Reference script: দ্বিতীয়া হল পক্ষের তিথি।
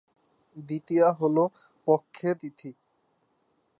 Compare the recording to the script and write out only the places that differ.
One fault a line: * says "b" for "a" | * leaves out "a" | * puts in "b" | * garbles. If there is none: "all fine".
all fine